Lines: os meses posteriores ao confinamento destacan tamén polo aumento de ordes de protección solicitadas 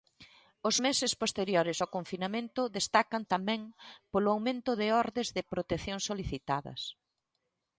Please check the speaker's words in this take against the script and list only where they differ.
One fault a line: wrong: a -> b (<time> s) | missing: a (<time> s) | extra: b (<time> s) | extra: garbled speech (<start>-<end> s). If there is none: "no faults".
no faults